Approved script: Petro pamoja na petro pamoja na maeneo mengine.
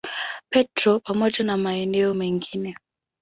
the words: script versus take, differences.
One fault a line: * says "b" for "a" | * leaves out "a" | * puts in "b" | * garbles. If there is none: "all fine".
* leaves out "petro pamoja na"